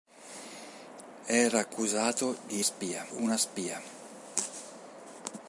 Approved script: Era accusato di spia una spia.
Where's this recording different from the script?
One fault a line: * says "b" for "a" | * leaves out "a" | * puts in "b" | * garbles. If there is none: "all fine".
all fine